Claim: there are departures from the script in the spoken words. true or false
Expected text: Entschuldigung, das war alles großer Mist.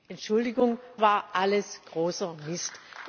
true